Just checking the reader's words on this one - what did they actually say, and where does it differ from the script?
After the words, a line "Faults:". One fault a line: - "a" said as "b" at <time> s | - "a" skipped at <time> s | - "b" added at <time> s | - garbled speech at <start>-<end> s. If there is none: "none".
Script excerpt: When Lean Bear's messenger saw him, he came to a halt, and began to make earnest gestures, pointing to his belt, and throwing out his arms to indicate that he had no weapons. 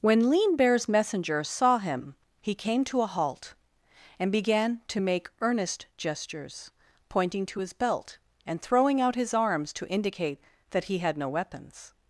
When Lean Bear's messenger saw him, he came to a halt, and began to make earnest gestures, pointing to his belt, and throwing out his arms to indicate that he had no weapons.
Faults:
none